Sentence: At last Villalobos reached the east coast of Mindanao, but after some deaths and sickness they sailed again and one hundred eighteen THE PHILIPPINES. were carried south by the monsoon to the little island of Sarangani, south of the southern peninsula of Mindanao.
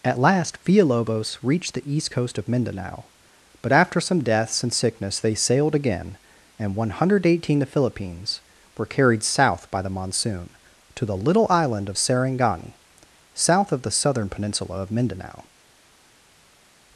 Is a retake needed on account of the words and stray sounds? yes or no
no